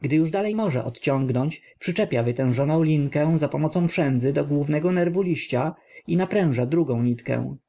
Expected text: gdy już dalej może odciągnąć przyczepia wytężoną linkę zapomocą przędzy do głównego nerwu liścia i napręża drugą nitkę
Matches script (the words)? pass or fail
pass